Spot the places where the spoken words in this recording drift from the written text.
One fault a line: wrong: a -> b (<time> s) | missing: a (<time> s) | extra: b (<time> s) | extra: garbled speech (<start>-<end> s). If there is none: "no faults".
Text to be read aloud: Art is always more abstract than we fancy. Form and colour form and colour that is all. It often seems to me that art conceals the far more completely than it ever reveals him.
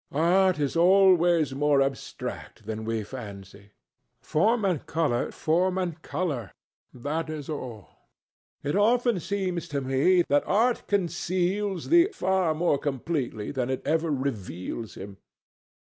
no faults